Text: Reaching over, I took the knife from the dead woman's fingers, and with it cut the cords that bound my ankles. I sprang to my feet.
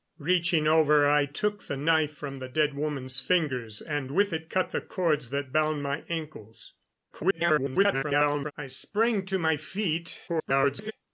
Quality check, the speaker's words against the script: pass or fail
fail